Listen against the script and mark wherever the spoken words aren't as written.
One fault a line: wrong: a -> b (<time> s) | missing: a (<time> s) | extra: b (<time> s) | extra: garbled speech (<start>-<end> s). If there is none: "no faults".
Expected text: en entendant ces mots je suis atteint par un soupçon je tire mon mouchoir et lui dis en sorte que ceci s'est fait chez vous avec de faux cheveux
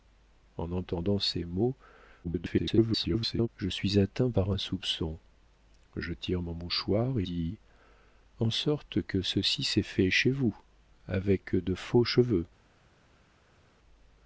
extra: garbled speech (2.2-3.5 s)
missing: lui (7.2 s)